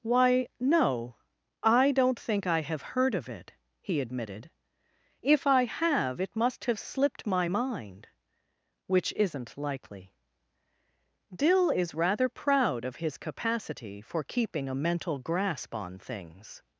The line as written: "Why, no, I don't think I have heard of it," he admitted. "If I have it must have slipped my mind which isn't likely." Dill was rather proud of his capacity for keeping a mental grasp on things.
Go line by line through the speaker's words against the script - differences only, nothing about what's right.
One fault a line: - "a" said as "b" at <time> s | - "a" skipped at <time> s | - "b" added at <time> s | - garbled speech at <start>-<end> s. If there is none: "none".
- "was" said as "is" at 11.7 s